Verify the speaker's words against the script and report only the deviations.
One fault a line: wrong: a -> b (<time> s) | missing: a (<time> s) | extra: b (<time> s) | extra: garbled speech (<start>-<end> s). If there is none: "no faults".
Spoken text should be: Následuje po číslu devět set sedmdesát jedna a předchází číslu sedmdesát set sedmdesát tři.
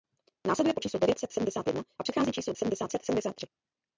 no faults